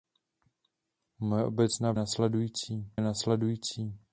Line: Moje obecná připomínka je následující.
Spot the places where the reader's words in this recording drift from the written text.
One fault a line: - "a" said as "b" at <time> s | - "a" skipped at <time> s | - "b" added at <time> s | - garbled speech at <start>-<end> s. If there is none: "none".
- "připomínka" said as "následující" at 1.9 s